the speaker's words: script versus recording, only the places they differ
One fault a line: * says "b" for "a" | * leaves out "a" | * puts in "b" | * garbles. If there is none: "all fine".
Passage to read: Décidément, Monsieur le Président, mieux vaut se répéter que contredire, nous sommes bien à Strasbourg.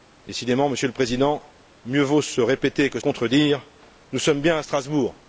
all fine